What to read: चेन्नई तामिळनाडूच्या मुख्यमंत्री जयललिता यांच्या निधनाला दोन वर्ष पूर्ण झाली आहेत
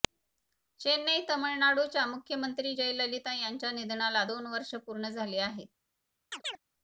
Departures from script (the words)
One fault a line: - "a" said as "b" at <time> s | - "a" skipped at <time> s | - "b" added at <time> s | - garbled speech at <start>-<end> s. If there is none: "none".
none